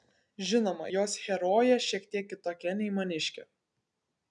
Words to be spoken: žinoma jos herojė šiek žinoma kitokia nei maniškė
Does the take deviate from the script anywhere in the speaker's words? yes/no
yes